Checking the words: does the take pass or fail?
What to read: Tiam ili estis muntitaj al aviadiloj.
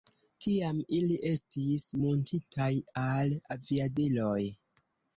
pass